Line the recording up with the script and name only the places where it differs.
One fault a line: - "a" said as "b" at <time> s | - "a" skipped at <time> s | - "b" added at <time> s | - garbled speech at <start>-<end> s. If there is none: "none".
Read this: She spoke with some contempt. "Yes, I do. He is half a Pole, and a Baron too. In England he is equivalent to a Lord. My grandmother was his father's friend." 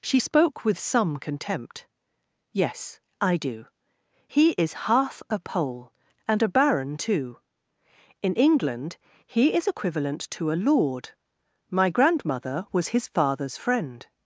none